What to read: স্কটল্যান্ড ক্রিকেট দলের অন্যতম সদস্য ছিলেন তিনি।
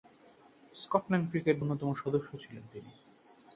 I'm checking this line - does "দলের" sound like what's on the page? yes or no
no